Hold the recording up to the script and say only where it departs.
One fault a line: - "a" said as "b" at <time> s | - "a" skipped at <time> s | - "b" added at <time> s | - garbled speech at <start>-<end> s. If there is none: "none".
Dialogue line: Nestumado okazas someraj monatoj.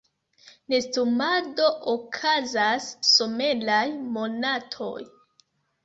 none